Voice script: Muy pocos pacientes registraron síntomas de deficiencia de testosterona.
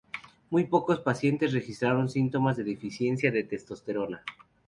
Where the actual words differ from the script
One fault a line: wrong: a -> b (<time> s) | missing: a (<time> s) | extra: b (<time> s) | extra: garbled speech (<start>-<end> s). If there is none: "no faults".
no faults